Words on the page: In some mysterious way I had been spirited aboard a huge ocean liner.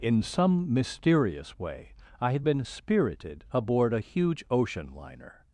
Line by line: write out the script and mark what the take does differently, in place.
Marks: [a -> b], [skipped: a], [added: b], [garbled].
In some mysterious way I had been spirited aboard a huge ocean liner.